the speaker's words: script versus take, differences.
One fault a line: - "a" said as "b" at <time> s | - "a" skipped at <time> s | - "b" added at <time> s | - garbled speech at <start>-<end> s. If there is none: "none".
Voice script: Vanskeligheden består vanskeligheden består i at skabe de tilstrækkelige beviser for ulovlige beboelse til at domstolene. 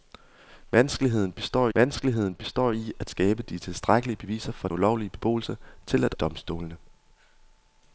none